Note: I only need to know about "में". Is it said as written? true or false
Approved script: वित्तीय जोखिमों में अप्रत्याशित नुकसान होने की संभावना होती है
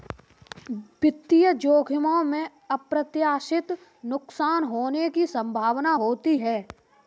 true